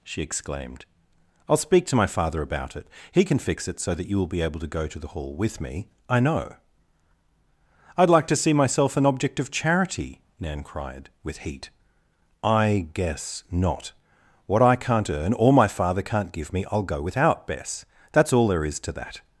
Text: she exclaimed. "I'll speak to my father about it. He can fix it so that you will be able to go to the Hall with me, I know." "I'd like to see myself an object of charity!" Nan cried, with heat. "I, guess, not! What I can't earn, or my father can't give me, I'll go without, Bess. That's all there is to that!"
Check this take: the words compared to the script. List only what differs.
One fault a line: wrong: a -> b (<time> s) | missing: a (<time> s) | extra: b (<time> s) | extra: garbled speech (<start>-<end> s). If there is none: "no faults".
no faults